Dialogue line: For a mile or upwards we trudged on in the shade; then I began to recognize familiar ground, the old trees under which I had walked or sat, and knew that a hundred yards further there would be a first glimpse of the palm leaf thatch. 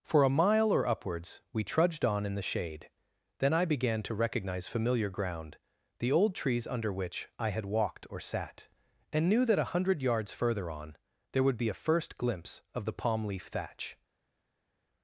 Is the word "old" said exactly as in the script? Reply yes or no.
yes